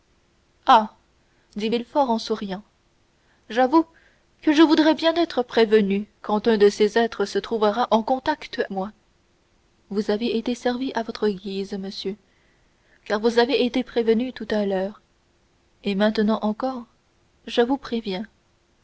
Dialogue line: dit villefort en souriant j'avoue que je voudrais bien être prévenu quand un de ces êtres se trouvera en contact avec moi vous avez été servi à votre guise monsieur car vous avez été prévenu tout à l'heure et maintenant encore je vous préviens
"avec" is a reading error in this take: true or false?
true